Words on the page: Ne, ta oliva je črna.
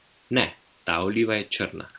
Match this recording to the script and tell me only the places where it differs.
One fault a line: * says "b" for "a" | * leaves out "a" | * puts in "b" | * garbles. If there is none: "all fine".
all fine